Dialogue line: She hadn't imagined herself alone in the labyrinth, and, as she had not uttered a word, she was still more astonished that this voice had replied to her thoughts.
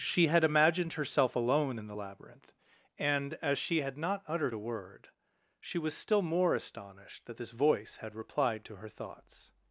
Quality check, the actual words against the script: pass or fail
fail